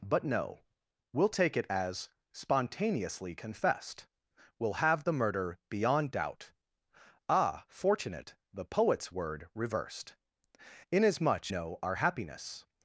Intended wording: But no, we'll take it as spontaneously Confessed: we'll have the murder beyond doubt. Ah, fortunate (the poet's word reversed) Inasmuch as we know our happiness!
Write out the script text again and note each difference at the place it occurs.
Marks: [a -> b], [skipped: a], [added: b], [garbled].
But no, we'll take it as spontaneously Confessed: we'll have the murder beyond doubt. Ah, fortunate (the poet's word reversed) Inasmuch [skipped: as we] know our happiness!